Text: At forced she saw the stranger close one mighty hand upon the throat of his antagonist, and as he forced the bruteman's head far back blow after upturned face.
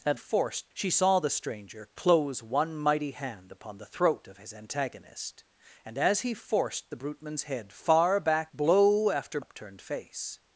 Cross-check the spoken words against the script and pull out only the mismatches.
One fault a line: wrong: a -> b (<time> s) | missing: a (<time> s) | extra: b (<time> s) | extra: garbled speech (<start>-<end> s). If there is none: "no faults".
no faults